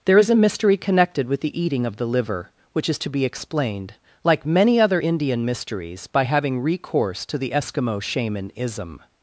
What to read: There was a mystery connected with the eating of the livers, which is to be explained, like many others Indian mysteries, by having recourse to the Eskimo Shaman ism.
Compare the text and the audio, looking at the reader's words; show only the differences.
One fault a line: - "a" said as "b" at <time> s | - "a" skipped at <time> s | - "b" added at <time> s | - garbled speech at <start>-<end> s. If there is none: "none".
- "was" said as "is" at 0.2 s
- "livers" said as "liver" at 2.1 s
- "others" said as "other" at 4.8 s